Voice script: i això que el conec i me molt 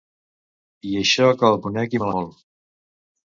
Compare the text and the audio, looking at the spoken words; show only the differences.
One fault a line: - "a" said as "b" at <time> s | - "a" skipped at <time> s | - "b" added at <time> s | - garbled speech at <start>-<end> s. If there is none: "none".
none